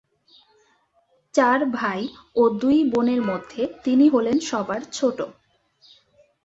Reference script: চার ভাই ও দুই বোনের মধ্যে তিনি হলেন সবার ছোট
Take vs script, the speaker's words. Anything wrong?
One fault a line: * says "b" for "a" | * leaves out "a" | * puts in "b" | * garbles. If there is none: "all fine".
all fine